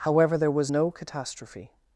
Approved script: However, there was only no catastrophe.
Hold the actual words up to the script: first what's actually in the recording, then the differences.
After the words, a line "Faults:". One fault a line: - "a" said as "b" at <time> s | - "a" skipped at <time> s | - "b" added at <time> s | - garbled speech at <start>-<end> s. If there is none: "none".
However, there was no catastrophe.
Faults:
- "only" skipped at 0.7 s